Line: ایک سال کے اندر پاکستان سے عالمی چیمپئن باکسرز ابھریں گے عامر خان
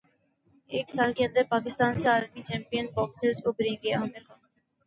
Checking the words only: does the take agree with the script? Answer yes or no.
yes